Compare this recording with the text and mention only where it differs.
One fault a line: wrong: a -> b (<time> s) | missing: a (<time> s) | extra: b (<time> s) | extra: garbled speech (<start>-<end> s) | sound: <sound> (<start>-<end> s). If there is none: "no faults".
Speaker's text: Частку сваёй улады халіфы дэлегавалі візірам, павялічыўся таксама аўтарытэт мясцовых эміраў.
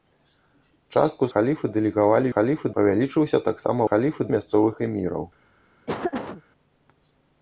missing: сваёй улады (1.2 s)
wrong: візірам -> халіфы (2.3 s)
wrong: аўтарытэт -> халіфы (3.9 s)
sound: laugh (5.9-6.4 s)